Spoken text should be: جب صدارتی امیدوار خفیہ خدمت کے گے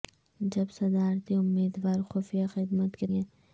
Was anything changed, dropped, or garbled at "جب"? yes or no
no